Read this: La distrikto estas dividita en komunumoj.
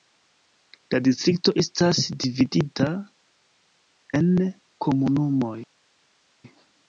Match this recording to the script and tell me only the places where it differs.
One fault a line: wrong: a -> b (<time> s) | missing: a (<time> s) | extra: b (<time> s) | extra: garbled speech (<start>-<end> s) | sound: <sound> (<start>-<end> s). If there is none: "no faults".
no faults